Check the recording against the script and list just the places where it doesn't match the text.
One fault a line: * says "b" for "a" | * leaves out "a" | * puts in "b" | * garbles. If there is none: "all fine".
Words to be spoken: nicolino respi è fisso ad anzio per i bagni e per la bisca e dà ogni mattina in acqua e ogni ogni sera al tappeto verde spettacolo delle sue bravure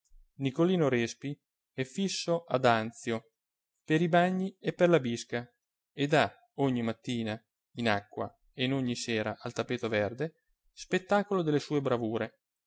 * leaves out "ogni"